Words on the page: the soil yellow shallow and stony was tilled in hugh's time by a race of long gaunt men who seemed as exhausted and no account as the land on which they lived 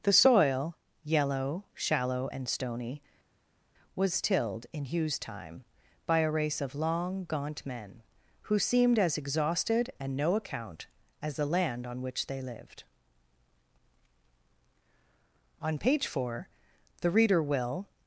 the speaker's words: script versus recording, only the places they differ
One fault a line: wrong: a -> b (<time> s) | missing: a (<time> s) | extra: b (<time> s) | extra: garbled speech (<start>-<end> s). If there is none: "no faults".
extra: on page four the reader will (15.6 s)